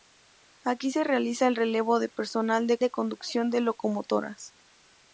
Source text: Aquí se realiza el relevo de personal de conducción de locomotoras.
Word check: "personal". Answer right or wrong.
right